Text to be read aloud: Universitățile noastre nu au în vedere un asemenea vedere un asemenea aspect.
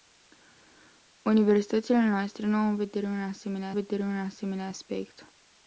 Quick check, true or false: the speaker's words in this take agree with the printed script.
true